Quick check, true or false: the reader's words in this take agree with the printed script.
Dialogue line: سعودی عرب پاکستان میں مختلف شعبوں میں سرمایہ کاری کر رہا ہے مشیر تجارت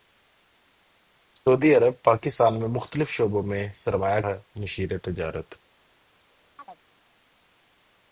false